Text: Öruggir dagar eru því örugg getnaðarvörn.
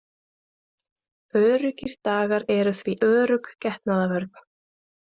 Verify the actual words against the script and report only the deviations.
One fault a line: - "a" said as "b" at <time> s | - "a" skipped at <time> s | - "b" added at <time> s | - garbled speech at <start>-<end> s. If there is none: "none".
none